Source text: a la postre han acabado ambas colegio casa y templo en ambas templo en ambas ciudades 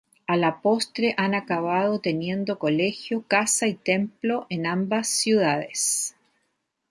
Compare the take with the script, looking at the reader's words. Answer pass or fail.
fail